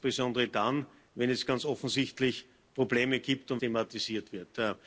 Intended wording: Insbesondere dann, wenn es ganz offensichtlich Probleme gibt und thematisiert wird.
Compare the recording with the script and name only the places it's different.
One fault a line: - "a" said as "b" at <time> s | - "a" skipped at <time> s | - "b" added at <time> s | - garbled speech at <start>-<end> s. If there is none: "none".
none